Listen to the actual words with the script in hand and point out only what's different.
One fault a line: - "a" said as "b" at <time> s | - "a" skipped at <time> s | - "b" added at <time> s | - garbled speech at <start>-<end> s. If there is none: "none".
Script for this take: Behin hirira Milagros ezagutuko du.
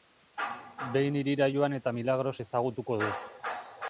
- "joan eta" added at 1.6 s